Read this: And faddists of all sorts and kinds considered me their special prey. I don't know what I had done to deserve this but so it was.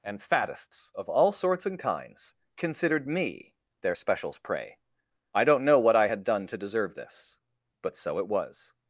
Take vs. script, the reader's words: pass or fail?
fail